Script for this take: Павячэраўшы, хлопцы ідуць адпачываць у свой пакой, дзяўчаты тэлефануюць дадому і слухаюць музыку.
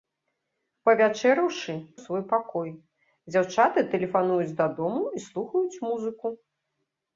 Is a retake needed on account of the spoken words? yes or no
yes